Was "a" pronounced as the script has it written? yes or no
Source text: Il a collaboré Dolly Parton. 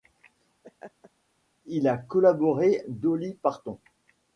yes